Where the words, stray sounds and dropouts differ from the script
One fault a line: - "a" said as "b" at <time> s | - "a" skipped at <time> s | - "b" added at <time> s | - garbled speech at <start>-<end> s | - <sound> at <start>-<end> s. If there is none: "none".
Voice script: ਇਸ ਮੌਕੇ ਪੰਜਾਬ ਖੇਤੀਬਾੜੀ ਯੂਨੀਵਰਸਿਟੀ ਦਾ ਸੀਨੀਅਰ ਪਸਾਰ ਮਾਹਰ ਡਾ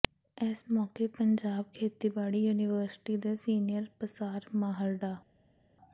- "ਦਾ" said as "ਦੇ" at 3.2 s